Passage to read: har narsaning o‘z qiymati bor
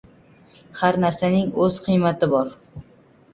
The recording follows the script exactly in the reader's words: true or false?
true